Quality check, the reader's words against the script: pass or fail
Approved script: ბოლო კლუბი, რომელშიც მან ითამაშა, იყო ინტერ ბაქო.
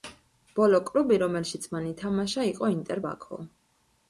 pass